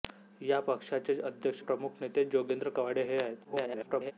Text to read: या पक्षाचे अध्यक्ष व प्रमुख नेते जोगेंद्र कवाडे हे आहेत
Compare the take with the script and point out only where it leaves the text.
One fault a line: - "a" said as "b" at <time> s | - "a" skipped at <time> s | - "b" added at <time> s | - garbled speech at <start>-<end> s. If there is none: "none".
- "व" skipped at 1.6 s
- garbled speech at 3.4-4.1 s